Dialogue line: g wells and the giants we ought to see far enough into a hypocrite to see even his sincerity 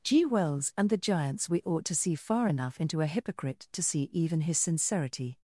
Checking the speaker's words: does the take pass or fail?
pass